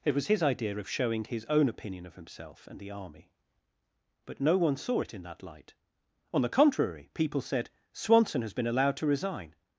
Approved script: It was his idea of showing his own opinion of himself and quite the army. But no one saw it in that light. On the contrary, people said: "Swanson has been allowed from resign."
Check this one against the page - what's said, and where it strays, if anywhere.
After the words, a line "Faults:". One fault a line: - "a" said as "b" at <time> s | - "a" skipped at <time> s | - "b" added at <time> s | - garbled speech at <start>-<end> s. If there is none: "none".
It was his idea of showing his own opinion of himself and the army. But no one saw it in that light. On the contrary, people said: "Swanson has been allowed to resign."
Faults:
- "quite" skipped at 2.8 s
- "from" said as "to" at 9.0 s